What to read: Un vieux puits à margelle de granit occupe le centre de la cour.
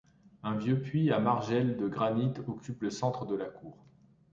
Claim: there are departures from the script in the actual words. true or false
false